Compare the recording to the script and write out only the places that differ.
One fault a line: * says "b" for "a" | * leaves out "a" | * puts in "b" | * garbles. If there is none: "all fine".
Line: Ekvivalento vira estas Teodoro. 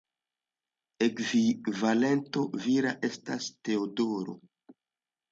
all fine